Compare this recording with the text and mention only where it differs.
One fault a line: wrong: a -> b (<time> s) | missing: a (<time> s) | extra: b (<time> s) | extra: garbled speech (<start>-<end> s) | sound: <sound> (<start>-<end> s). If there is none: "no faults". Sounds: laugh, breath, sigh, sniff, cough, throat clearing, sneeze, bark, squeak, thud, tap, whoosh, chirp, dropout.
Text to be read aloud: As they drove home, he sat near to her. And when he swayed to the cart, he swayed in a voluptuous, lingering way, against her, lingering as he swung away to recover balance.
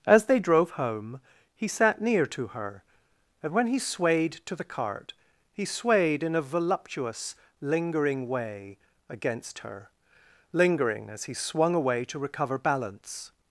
no faults